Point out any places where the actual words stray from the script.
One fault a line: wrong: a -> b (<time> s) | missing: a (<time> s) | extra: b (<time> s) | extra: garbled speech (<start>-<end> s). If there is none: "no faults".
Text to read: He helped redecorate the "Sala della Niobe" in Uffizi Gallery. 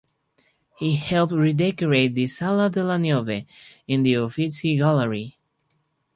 extra: the (4.0 s)